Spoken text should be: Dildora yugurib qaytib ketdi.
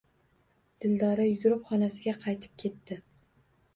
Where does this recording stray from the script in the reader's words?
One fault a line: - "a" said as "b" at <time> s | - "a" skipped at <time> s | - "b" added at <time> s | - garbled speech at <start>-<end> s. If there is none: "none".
- "xonasiga" added at 1.7 s